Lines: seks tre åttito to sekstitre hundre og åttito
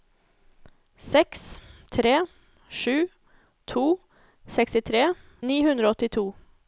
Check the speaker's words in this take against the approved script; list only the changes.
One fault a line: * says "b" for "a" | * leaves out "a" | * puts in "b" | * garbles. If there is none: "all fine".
* says "sju" for "åttito"
* puts in "ni"